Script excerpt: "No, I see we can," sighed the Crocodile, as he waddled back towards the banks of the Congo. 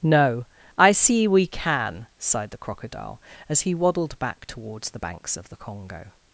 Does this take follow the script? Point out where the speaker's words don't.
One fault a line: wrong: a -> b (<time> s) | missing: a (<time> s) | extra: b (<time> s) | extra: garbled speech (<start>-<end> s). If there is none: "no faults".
no faults